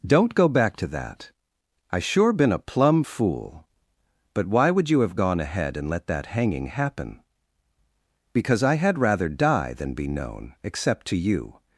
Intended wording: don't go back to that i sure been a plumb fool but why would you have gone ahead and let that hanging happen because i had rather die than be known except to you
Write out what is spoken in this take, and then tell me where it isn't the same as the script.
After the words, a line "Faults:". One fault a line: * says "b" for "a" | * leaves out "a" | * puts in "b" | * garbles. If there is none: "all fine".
don't go back to that i sure been a plumb fool but why would you have gone ahead and let that hanging happen because i had rather die than be known except to you
Faults:
all fine